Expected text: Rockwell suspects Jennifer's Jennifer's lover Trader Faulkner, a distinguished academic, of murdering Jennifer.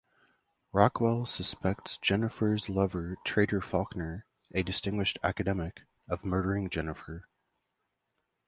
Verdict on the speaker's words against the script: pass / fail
fail